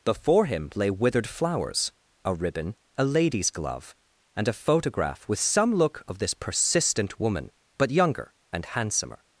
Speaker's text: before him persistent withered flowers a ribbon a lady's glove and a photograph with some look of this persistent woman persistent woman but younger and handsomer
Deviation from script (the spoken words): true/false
true